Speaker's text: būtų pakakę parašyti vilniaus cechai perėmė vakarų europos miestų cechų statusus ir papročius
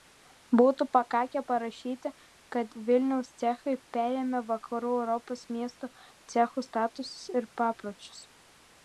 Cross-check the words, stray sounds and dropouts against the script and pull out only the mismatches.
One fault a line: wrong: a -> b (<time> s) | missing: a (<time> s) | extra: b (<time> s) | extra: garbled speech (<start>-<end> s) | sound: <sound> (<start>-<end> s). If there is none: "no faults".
extra: kad (2.6 s)